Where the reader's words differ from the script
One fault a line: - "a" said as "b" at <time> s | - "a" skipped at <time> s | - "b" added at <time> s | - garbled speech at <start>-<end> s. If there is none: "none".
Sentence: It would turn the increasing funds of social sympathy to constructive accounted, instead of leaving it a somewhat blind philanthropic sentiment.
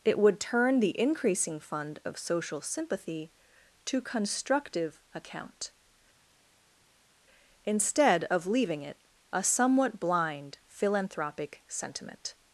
- "funds" said as "fund" at 1.6 s
- "accounted" said as "account" at 5.1 s